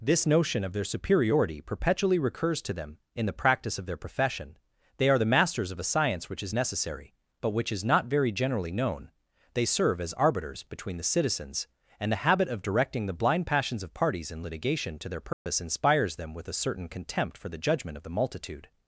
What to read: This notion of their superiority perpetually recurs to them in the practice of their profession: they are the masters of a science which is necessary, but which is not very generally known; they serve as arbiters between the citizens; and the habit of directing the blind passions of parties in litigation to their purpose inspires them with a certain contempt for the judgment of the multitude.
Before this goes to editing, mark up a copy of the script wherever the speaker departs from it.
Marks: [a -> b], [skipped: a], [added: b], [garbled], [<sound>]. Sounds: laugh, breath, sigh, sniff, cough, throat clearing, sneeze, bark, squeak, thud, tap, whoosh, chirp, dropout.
This notion of their superiority perpetually recurs to them in the practice of their profession: they are the masters of a science which is necessary, but which is not very generally known; they serve as arbiters between the citizens; and the habit of directing the blind passions of parties in litigation to their purpose [dropout] inspires them with a certain contempt for the judgment of the multitude.